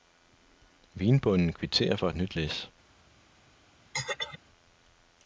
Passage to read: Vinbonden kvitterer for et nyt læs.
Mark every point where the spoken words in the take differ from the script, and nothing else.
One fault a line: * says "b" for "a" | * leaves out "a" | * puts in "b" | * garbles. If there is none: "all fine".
all fine